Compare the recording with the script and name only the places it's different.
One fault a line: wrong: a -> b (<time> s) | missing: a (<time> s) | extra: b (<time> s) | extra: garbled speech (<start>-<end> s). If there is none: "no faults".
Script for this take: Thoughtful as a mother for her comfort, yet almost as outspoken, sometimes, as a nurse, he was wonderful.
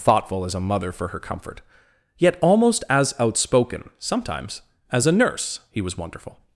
no faults